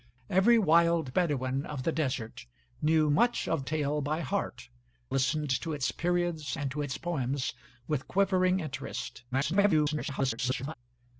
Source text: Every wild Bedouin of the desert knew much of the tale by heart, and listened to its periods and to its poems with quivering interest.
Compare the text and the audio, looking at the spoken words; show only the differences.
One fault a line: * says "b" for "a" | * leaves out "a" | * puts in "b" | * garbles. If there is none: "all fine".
* leaves out "the"
* leaves out "and"
* garbles